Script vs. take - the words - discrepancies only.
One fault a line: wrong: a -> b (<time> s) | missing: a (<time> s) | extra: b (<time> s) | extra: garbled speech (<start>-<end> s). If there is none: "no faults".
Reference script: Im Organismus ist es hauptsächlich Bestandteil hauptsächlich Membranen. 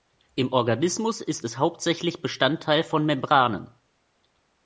wrong: hauptsächlich -> von (2.8 s)